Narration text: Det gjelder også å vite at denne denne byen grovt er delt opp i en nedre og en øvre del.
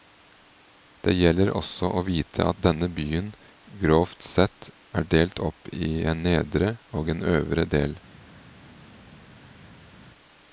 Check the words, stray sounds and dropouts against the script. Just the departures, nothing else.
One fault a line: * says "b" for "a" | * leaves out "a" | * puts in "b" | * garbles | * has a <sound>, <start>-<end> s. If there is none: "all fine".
* leaves out "denne"
* puts in "sett"